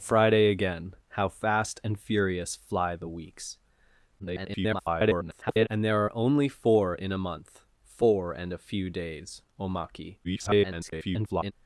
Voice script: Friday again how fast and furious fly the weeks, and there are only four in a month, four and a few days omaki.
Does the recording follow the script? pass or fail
fail